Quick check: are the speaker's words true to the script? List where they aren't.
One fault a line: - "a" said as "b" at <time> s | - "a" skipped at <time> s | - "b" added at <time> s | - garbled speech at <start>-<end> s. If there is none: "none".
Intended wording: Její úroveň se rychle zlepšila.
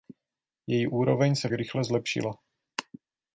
none